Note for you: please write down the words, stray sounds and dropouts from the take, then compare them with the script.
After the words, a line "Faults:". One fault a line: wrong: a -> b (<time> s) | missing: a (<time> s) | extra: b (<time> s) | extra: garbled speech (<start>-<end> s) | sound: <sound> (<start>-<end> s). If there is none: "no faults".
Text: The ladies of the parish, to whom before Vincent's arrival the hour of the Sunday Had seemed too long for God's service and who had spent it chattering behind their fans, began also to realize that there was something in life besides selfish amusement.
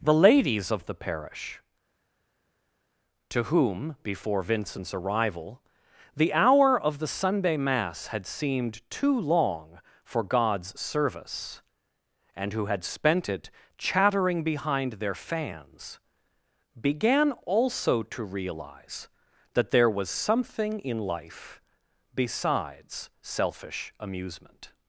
The ladies of the parish, to whom before Vincent's arrival the hour of the Sunday Mass had seemed too long for God's service and who had spent it chattering behind their fans, began also to realize that there was something in life besides selfish amusement.
Faults:
extra: Mass (7.6 s)